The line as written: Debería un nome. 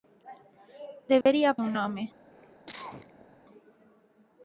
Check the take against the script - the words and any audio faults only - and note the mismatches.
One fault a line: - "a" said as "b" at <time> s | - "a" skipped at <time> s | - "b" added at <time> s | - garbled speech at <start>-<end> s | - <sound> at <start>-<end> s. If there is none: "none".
- dropout at 1.2-1.3 s
- cough at 2.3-3.4 s